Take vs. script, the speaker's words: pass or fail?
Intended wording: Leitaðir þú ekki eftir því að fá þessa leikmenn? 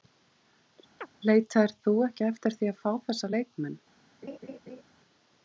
pass